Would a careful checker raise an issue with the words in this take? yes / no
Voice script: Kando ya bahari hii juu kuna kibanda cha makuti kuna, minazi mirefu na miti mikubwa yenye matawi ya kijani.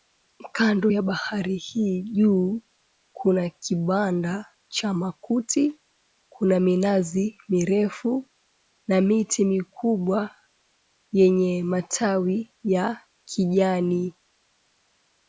no